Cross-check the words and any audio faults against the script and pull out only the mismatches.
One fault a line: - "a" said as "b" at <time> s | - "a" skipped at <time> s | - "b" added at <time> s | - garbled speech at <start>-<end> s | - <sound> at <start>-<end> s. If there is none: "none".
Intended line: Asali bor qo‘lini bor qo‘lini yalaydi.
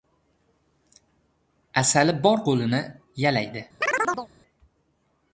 - "bor qo‘lini" skipped at 2.8 s
- chirp at 3.8-4.3 s